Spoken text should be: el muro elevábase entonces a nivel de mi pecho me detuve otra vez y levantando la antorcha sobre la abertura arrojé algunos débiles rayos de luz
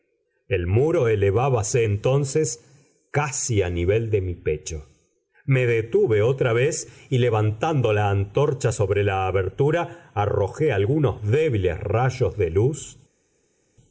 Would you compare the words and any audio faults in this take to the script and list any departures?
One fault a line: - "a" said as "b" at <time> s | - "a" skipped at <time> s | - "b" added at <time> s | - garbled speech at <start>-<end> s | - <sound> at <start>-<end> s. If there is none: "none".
- "casi" added at 3.1 s